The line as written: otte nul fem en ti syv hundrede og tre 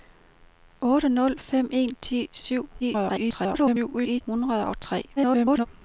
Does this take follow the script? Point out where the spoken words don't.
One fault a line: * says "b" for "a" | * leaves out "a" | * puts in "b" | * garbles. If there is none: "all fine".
* garbles
* garbles